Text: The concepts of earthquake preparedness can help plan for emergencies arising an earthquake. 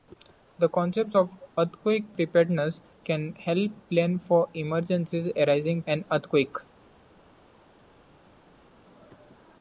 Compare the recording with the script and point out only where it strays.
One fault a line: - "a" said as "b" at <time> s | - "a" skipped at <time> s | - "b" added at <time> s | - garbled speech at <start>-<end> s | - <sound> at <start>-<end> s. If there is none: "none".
none